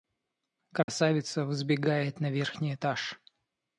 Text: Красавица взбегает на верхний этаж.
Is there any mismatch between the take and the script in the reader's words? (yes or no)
no